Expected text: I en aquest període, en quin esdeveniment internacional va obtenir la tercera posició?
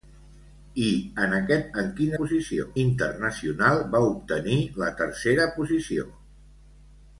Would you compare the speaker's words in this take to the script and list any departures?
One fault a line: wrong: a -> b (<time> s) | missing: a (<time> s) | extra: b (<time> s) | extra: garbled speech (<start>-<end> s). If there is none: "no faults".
missing: període (1.7 s)
wrong: esdeveniment -> posició (2.2 s)